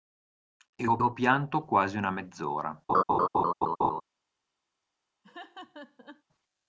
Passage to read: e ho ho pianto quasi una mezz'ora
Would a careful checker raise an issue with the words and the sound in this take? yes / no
yes